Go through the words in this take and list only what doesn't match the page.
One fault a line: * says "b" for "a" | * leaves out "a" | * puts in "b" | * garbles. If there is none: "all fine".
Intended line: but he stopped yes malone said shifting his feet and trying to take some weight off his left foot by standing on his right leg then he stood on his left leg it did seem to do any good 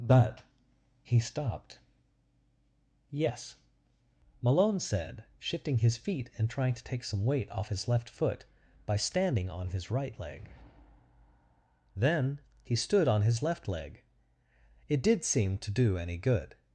all fine